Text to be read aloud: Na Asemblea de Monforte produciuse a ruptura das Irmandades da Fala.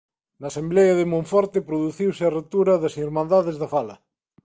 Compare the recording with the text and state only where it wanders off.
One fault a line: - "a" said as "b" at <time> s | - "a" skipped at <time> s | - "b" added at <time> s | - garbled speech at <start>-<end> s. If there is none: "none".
none